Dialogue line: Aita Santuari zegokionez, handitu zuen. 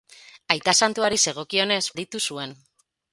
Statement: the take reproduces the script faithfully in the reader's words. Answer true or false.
true